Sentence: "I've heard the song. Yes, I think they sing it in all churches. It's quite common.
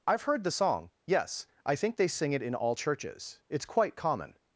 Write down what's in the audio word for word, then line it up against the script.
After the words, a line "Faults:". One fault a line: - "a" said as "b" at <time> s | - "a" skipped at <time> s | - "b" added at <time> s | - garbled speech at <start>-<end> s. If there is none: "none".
"I've heard the song. Yes, I think they sing it in all churches. It's quite common.
Faults:
none